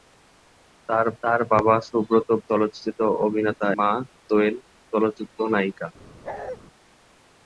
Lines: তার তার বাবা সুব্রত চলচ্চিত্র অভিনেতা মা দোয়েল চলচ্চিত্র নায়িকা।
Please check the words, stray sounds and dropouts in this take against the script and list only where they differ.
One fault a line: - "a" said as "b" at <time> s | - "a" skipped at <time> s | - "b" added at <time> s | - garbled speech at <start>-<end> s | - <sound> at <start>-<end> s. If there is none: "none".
- bark at 6.2-6.6 s